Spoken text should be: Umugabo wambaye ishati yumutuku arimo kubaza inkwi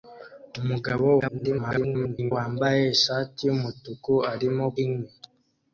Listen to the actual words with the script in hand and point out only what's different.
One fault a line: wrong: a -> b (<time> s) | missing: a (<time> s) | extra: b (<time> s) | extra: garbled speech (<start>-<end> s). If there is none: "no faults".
extra: garbled speech (1.2-2.3 s)
missing: kubaza (4.7 s)